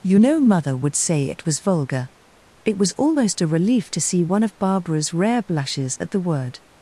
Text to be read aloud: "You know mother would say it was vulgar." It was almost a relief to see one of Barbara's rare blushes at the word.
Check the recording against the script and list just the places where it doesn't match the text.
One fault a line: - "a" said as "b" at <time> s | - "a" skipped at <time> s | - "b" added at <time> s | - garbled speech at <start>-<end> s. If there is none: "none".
none